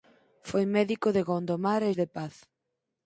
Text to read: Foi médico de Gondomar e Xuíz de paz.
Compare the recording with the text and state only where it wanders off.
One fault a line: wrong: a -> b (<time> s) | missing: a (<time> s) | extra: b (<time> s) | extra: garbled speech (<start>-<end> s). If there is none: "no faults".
missing: Xuíz (1.9 s)